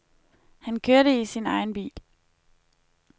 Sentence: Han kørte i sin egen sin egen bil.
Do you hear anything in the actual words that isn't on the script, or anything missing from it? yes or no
yes